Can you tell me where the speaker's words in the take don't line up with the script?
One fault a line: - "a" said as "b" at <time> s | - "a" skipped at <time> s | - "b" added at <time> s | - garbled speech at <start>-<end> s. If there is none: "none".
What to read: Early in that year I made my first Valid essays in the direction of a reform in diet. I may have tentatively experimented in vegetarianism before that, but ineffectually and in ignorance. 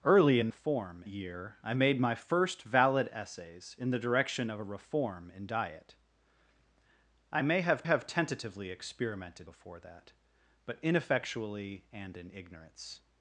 - "that" said as "reform" at 0.5 s
- "have" added at 7.8 s
- "in vegetarianism" skipped at 9.5 s